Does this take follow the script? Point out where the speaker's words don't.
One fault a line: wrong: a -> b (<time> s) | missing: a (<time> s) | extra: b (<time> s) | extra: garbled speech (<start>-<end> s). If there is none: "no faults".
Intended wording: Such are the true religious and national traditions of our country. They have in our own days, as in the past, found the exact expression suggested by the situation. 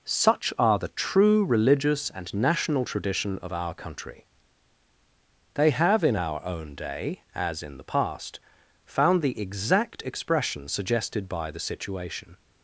wrong: traditions -> tradition (2.9 s)
wrong: days -> day (6.8 s)